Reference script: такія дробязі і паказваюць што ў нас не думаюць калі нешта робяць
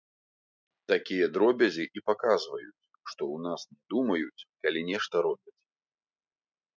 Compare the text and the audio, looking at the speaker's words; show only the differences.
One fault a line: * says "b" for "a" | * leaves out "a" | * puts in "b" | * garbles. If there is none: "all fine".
all fine